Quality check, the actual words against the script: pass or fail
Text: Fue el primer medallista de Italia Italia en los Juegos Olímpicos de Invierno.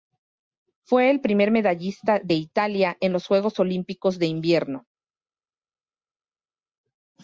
fail